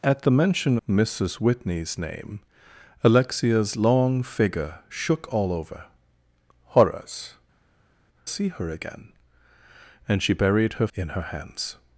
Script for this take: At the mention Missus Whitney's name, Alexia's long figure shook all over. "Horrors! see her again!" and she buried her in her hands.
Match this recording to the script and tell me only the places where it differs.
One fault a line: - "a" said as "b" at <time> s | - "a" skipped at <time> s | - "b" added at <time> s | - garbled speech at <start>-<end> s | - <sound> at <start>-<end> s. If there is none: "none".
none